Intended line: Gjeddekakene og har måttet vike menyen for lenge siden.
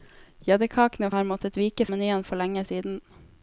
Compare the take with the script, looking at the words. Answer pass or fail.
pass